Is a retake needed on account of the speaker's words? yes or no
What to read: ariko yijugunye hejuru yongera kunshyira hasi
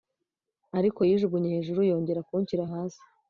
no